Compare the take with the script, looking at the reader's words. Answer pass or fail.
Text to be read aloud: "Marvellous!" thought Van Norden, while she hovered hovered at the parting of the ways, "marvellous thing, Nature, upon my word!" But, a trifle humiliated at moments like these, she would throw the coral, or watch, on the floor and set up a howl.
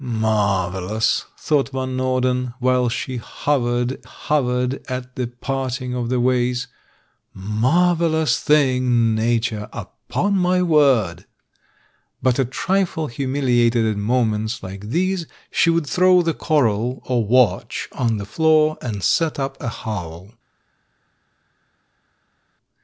pass